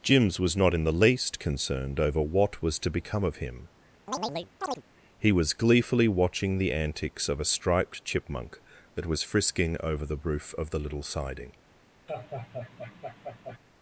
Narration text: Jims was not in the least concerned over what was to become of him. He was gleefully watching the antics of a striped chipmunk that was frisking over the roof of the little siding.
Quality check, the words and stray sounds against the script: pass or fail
fail